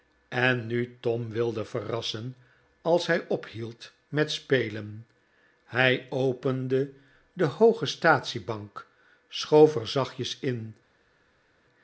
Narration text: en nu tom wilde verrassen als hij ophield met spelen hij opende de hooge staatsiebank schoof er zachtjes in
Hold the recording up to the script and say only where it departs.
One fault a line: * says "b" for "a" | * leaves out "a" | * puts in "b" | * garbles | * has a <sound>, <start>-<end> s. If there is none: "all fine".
all fine